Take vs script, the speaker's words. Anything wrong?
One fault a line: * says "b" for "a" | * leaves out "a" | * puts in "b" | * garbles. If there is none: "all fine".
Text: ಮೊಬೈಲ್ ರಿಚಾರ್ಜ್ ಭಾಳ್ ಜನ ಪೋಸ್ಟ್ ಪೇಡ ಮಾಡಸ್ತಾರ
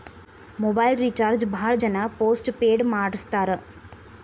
all fine